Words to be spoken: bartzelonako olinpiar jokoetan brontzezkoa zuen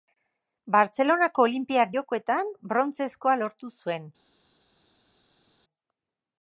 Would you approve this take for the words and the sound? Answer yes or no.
no